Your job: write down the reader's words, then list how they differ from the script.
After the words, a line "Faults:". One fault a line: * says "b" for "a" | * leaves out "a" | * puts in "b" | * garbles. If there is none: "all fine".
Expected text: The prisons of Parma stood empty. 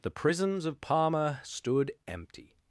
The prisons of Parma stood empty.
Faults:
all fine